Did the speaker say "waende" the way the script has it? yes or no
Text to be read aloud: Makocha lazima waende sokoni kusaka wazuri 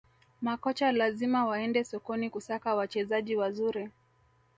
yes